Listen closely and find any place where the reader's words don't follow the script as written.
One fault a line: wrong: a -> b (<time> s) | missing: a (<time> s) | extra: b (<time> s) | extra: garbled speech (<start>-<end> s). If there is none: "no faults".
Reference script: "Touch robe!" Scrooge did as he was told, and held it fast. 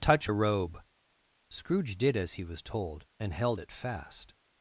no faults